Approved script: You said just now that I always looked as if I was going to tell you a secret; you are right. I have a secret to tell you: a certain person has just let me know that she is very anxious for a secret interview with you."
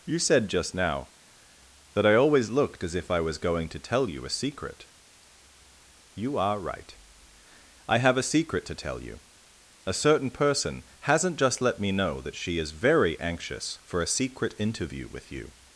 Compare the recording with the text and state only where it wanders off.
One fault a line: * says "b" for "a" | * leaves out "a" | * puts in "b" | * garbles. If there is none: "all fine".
* says "hasn't" for "has"